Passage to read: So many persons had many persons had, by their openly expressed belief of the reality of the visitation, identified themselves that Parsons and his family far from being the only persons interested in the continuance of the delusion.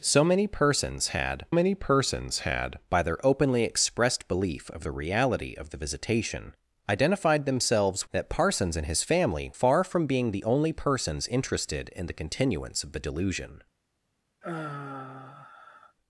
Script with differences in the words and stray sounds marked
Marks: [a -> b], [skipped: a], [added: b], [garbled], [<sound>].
So many persons had many persons had, by their openly expressed belief of the reality of the visitation, identified themselves that Parsons and his family far from being the only persons interested in the continuance of the delusion. [sigh]